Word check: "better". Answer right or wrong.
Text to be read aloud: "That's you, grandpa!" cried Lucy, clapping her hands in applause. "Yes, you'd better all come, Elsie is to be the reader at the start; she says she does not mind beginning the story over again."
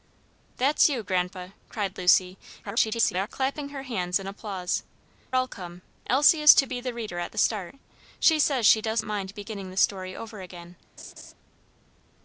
wrong